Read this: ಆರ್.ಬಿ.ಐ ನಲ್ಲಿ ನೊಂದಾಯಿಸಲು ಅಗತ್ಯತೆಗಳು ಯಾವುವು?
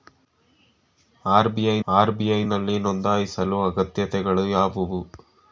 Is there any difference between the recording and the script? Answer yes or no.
yes